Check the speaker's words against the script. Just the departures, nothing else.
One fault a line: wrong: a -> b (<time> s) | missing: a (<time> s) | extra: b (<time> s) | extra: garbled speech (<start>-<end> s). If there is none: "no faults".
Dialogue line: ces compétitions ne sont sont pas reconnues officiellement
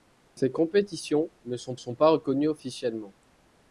no faults